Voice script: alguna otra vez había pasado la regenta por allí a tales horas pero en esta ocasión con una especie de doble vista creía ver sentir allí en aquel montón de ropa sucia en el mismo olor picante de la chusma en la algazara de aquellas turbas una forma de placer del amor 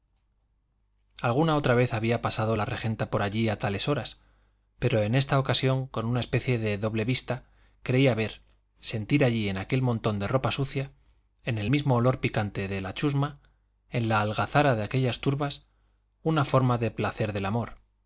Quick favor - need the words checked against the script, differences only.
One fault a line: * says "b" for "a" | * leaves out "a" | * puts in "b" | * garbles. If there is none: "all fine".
all fine